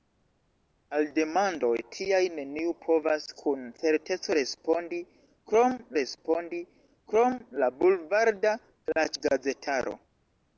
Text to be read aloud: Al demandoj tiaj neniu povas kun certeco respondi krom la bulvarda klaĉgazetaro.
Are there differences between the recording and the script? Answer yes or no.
yes